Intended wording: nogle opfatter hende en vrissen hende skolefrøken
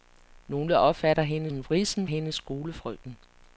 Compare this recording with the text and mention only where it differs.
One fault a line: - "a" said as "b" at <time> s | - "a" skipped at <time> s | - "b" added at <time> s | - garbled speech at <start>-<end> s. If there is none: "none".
none